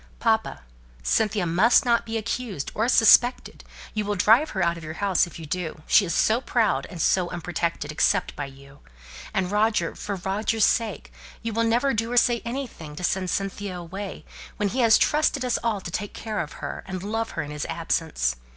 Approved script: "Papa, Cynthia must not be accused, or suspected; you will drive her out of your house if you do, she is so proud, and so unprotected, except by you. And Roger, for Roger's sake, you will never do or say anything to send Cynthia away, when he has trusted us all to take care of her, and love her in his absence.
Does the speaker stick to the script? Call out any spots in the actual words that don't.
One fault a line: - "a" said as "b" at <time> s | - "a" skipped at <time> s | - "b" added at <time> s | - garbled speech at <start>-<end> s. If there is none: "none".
none